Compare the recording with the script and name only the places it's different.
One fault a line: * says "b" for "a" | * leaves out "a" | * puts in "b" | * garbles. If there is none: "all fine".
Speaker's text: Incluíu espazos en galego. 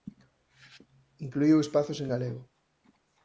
all fine